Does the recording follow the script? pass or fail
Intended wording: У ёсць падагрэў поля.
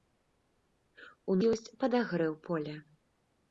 pass